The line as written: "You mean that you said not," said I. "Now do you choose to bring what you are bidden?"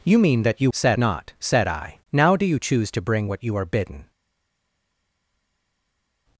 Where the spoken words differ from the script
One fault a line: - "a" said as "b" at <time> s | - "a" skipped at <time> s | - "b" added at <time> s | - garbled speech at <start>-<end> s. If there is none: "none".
none